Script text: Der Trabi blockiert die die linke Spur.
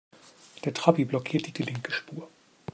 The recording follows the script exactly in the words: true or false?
true